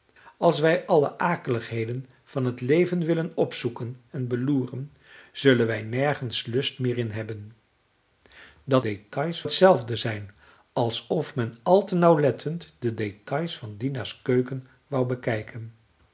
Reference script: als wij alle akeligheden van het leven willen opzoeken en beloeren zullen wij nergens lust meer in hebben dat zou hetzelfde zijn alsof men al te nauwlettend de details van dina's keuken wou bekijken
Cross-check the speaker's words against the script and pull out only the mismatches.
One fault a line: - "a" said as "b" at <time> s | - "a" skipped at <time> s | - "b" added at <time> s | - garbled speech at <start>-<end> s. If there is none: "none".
- "zou" said as "details" at 8.8 s